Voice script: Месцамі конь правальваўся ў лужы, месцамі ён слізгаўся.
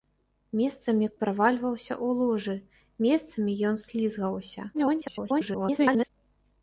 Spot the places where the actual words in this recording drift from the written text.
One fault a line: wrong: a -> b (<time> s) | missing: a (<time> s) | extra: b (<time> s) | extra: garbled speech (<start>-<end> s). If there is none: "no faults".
missing: конь (1.1 s)
extra: garbled speech (4.7-6.1 s)